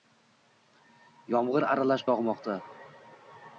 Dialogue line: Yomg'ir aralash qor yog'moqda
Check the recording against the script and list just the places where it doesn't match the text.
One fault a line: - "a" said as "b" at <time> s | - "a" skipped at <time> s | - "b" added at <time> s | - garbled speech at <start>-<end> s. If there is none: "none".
- "qor" skipped at 2.1 s